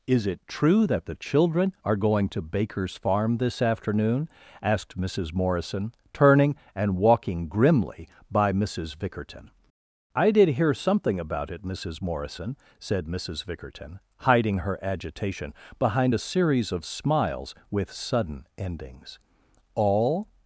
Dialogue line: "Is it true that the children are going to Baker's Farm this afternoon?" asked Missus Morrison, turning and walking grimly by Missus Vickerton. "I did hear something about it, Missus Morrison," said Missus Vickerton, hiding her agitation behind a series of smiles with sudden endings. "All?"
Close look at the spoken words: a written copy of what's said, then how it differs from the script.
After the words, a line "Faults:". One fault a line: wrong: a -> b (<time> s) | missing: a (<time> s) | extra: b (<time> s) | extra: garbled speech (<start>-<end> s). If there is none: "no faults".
"Is it true that the children are going to Baker's Farm this afternoon?" asked Missus Morrison, turning and walking grimly by Missus Vickerton. "I did hear something about it, Missus Morrison," said Missus Vickerton, hiding her agitation behind a series of smiles with sudden endings. "All?"
Faults:
no faults